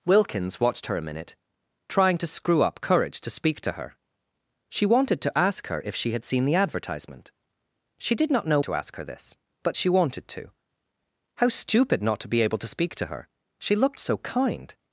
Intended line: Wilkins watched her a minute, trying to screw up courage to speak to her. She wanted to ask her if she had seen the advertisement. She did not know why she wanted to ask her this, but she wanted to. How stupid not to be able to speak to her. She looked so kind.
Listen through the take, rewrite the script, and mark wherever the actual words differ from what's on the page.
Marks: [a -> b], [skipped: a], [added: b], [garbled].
Wilkins watched her a minute, trying to screw up courage to speak to her. She wanted to ask her if she had seen the advertisement. She did not know [skipped: why she wanted] to ask her this, but she wanted to. How stupid not to be able to speak to her. She looked so kind.